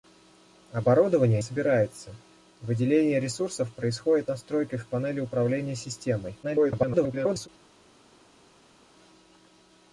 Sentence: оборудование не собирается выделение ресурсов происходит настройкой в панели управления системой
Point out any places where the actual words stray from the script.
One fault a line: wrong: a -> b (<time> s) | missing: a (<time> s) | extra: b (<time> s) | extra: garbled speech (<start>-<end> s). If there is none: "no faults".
missing: не (1.4 s)
extra: garbled speech (6.4-7.5 s)